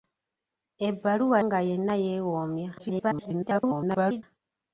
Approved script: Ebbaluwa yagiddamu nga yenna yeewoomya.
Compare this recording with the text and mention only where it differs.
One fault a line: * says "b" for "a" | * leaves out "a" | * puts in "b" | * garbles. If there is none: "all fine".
* leaves out "yagiddamu"
* garbles